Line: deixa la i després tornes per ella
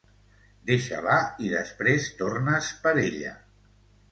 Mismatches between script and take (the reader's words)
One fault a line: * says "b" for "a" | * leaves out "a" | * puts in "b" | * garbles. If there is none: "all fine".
all fine